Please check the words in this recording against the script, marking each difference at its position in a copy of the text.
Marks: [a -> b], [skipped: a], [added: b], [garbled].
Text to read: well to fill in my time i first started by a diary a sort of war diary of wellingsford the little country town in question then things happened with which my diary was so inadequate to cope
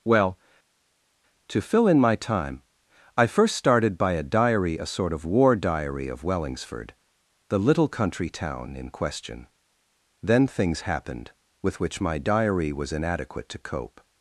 well to fill in my time i first started by a diary a sort of war diary of wellingsford the little country town in question then things happened with which my diary was [skipped: so] inadequate to cope